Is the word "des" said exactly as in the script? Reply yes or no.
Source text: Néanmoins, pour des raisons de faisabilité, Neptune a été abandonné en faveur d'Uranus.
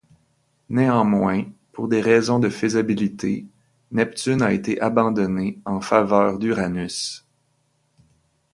yes